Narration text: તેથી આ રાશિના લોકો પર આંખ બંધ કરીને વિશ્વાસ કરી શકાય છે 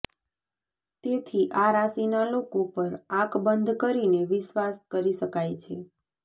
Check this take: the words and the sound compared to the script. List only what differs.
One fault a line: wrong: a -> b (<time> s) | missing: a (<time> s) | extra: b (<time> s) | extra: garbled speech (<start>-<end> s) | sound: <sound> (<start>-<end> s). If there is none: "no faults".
no faults